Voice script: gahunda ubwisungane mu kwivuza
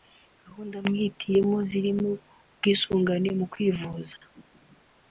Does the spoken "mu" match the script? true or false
true